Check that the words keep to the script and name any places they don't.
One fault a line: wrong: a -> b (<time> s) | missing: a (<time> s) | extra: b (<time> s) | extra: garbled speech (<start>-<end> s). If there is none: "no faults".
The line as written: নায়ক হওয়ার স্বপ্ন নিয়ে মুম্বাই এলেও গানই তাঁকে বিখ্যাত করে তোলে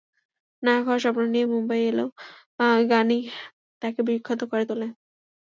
no faults